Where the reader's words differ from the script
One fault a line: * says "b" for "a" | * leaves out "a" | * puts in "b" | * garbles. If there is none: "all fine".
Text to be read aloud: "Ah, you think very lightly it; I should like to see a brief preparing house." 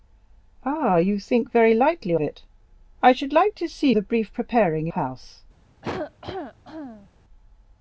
all fine